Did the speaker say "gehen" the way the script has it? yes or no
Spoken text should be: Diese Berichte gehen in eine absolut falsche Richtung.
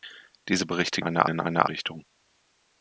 no